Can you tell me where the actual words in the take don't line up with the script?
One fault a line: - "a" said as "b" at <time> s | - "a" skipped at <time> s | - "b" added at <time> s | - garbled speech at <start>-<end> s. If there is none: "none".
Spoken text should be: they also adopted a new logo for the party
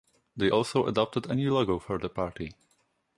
none